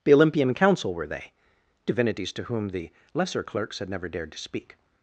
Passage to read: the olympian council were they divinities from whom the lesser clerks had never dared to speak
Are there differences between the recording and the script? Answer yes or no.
yes